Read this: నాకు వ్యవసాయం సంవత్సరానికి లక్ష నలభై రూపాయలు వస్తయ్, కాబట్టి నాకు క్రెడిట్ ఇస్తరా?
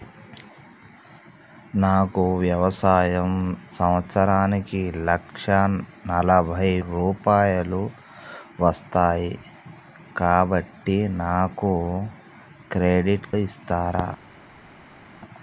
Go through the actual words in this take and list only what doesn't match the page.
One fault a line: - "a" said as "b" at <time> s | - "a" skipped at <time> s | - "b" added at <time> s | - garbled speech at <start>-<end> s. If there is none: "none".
none